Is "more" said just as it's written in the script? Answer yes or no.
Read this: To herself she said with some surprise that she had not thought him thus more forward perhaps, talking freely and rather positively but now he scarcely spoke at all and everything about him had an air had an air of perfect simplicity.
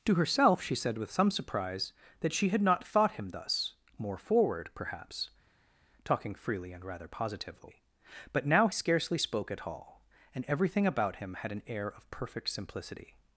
yes